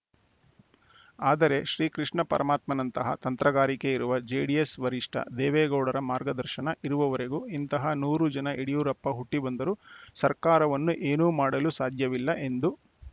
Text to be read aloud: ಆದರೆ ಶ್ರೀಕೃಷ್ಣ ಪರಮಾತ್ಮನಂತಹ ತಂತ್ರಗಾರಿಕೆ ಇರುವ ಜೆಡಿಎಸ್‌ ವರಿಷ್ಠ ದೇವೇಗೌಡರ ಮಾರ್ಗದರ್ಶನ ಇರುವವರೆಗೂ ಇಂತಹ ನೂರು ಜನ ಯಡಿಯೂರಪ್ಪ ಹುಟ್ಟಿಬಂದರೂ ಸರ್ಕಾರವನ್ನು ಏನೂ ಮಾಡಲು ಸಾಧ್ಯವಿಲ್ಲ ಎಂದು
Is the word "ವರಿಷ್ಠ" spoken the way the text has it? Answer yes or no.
yes